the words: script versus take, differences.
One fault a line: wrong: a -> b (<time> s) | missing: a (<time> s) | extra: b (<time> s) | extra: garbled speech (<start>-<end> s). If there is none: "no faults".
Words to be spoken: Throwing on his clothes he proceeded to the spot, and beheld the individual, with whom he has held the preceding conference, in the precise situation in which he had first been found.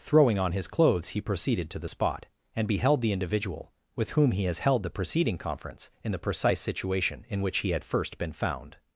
no faults